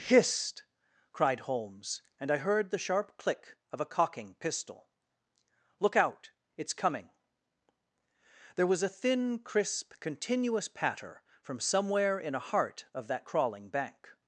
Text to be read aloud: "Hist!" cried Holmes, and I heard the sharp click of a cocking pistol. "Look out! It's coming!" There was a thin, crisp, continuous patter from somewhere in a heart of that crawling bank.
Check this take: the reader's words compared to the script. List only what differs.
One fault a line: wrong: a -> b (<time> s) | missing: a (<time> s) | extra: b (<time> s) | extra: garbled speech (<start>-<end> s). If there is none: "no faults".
no faults